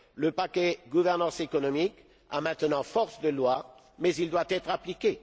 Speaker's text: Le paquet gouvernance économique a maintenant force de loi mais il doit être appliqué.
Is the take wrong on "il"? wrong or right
right